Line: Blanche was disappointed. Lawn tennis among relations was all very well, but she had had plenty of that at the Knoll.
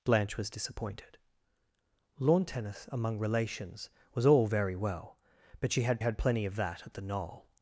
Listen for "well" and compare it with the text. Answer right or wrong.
right